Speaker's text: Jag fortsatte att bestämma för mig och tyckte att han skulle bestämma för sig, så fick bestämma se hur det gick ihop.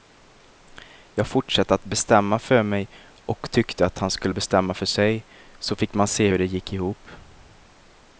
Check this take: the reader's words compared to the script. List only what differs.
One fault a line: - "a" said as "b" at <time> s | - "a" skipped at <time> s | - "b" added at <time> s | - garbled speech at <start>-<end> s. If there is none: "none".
- "bestämma" said as "man" at 5.9 s